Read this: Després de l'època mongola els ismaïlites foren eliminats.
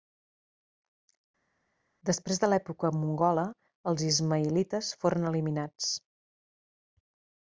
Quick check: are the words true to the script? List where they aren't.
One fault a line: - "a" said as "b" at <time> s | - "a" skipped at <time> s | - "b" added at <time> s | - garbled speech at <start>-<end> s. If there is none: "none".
none